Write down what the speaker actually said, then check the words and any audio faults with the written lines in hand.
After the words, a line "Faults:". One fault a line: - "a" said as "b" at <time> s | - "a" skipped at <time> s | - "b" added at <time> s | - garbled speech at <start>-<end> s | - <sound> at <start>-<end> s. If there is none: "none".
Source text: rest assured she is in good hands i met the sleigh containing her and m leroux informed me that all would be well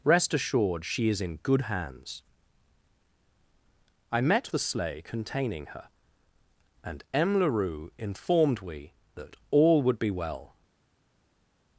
rest assured she is in good hands i met the sleigh containing her and m leroux informed we that all would be well
Faults:
- "me" said as "we" at 8.6 s